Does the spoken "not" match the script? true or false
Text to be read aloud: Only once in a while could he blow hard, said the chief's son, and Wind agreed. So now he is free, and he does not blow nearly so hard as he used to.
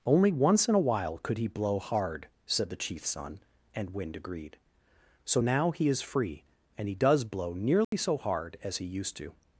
false